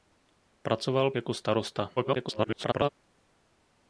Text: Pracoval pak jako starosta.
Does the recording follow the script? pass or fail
fail